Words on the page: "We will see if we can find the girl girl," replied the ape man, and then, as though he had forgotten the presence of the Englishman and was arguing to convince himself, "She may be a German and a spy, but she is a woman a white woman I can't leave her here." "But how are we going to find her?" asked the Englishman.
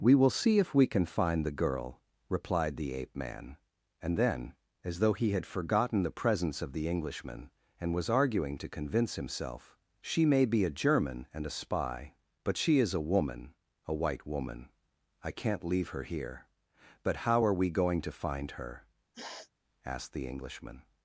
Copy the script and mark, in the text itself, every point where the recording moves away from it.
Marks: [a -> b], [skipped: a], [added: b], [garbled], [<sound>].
"We will see if we can find the girl [skipped: girl,"] replied the ape man, and then, as though he had forgotten the presence of the Englishman and was arguing to convince himself, "She may be a German and a spy, but she is a woman a white woman I can't leave her here." "But how are we going to find her?" [sniff] asked the Englishman.